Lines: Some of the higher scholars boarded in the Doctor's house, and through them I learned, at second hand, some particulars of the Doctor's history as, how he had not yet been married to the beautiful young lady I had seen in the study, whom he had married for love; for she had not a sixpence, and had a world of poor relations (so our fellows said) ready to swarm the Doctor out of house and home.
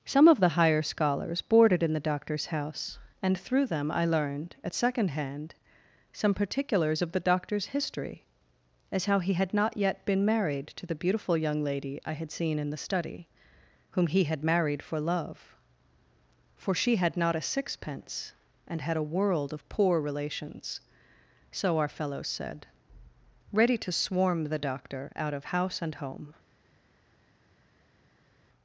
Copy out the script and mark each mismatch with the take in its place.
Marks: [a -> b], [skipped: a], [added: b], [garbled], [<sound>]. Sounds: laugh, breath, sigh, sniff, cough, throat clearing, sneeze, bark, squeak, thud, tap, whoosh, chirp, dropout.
Some of the higher scholars boarded in the Doctor's house, and through them I learned, at second hand, some particulars of the Doctor's history as, how he had not yet been married to the beautiful young lady I had seen in the study, whom he had married for love; for she had not a sixpence, and had a world of poor relations (so our fellows said) ready to swarm the Doctor out of house and home.